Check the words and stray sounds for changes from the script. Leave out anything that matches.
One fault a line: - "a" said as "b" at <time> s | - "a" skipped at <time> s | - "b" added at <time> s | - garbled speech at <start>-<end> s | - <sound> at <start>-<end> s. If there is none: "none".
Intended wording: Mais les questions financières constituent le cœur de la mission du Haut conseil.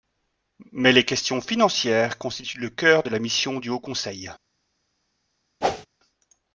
- whoosh at 5.6-5.9 s